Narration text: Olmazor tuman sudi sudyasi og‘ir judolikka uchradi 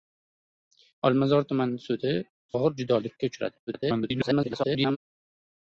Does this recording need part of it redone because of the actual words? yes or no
yes